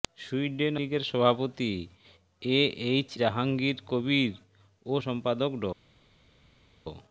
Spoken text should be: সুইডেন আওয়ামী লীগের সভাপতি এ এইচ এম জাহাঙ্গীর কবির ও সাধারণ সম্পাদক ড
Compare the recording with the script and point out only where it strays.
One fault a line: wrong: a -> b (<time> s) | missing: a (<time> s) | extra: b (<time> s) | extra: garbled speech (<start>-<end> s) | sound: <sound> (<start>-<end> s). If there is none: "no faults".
missing: আওয়ামী (0.8 s)
missing: এম (3.1 s)
missing: সাধারণ (4.9 s)